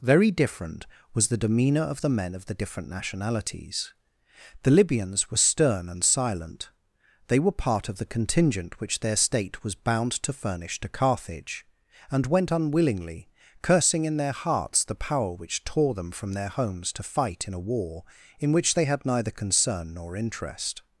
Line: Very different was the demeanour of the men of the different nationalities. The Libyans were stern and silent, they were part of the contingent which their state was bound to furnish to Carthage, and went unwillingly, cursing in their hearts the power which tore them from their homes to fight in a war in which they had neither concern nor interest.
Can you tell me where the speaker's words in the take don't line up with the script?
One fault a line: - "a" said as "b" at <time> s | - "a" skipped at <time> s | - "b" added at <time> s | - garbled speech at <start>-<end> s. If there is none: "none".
none